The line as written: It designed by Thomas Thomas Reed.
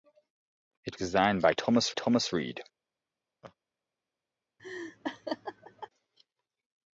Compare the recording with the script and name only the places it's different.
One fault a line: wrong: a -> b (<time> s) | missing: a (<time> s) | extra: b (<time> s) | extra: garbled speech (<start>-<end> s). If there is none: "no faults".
no faults